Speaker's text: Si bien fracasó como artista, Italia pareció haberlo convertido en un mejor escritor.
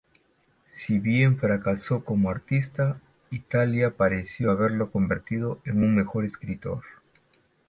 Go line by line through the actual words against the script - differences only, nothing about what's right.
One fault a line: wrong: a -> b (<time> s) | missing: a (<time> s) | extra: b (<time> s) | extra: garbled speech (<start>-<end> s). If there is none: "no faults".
no faults